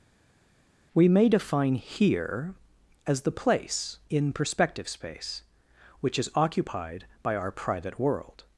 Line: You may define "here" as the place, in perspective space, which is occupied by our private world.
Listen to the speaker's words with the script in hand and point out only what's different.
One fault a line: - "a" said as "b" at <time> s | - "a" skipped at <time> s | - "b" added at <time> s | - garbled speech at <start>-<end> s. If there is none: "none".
- "You" said as "We" at 0.9 s